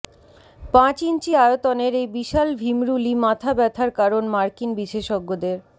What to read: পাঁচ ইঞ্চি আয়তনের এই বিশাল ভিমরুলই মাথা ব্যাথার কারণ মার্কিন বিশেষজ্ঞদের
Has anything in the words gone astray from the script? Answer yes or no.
no